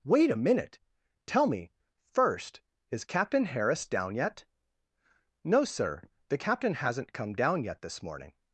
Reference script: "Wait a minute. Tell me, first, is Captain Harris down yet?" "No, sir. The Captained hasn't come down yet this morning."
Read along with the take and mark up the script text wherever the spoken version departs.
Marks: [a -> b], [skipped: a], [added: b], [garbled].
"Wait a minute. Tell me, first, is Captain Harris down yet?" "No, sir. The [Captained -> Captain] hasn't come down yet this morning."